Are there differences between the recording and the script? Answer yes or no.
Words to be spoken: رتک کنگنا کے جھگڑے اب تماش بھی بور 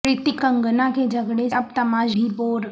no